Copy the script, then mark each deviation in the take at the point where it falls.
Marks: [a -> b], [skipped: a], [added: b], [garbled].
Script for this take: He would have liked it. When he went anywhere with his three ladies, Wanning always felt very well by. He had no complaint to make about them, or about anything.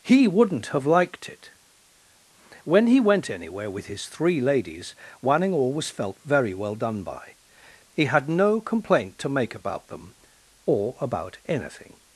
He [would -> wouldn't] have liked it. When he went anywhere with his three ladies, Wanning always felt very well [added: done] by. He had no complaint to make about them, or about anything.